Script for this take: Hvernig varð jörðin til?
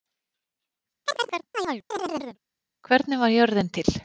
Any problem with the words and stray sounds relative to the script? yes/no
yes